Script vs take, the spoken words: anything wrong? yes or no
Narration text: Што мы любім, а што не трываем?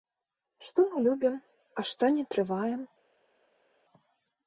no